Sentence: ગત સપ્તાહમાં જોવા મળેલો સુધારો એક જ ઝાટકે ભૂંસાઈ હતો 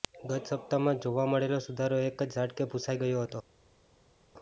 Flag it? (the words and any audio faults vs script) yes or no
yes